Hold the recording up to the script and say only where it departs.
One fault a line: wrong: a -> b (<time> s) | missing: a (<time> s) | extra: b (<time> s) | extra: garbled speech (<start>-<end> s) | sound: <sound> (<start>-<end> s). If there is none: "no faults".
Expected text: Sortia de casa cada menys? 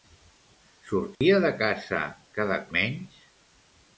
sound: dropout (1.2-1.2 s)